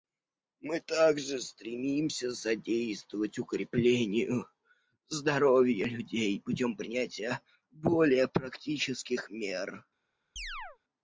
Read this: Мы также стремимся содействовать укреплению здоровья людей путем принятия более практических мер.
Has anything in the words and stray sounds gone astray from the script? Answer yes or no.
yes